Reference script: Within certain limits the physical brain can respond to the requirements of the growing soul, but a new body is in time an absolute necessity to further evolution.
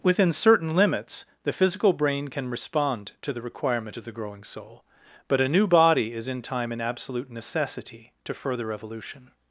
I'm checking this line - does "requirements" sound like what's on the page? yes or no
no